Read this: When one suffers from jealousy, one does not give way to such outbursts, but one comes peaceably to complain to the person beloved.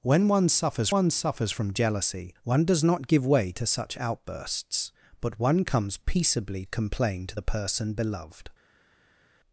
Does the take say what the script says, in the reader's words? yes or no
no